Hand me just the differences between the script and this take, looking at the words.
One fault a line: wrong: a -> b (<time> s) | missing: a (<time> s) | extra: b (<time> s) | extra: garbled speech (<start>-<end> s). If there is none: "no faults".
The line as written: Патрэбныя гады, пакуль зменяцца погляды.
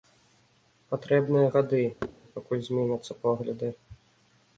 no faults